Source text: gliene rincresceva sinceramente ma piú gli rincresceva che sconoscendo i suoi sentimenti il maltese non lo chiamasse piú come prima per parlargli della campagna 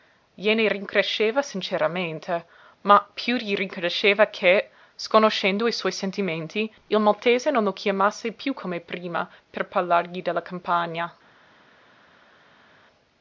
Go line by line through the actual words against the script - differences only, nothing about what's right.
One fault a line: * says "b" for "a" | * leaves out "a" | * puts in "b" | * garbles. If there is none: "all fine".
all fine